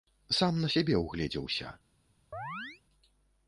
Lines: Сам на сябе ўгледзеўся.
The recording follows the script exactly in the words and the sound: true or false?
false